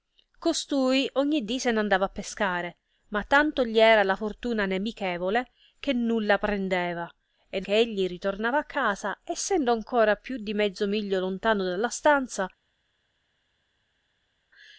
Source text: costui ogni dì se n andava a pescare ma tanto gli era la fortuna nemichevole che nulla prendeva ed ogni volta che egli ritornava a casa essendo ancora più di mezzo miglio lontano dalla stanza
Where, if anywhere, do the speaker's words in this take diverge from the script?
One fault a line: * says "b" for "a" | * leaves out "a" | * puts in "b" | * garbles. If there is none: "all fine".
* leaves out "ogni volta"